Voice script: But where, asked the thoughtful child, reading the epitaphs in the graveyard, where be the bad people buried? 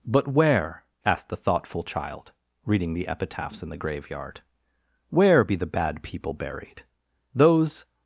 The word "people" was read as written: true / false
true